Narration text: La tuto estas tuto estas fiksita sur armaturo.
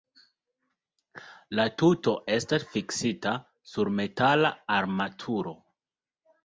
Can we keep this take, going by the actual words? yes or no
no